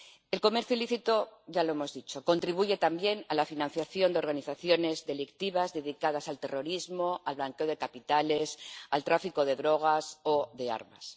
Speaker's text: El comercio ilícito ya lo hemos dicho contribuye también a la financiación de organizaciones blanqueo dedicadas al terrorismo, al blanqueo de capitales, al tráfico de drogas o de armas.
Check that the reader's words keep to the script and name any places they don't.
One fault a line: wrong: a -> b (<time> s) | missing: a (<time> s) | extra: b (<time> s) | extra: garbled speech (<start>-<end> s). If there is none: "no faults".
wrong: blanqueo -> delictivas (5.1 s)